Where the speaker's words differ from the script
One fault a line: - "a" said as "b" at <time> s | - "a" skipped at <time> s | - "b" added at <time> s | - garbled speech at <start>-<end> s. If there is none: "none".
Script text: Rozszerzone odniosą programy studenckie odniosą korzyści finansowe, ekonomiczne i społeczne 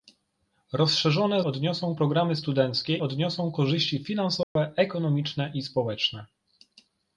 none